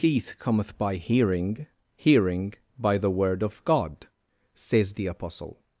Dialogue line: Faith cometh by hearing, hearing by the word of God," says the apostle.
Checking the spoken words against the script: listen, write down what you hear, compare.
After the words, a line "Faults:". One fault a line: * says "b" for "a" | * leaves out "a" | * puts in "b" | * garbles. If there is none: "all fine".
Faith cometh by hearing, hearing by the word of God," says the apostle.
Faults:
all fine